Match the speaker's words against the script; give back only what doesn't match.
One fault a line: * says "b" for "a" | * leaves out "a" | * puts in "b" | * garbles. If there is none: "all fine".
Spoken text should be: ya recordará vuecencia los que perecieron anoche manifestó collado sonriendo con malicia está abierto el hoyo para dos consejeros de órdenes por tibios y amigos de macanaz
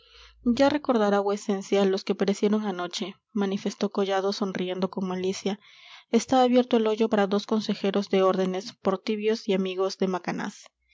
all fine